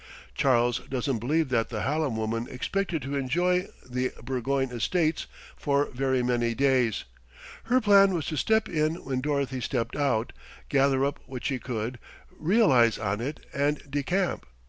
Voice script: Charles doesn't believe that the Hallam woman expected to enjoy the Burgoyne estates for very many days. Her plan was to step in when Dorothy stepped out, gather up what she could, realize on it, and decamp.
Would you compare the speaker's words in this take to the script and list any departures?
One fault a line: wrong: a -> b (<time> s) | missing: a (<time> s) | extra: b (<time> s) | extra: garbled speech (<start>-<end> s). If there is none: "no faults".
no faults